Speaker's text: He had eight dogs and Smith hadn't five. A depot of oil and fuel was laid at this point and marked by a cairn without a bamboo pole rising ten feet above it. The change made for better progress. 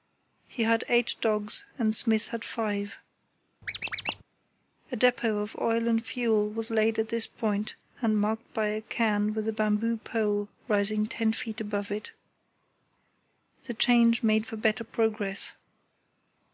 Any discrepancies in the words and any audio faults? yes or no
yes